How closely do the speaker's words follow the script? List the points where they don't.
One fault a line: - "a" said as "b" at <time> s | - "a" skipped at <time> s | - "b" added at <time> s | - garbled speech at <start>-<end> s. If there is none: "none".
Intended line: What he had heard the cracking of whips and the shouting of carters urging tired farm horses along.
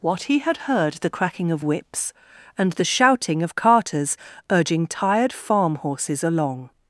none